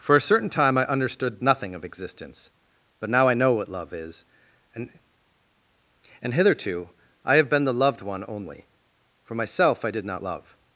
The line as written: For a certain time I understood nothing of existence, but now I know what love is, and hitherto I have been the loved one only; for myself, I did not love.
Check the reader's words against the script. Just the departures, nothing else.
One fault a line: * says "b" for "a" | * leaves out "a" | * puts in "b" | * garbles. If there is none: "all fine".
* puts in "and"